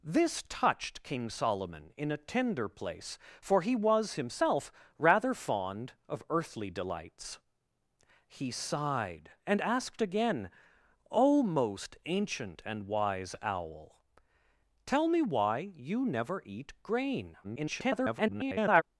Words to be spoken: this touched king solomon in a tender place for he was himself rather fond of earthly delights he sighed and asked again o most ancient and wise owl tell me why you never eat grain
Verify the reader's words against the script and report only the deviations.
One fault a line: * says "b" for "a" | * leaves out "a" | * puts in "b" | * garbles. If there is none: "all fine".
* garbles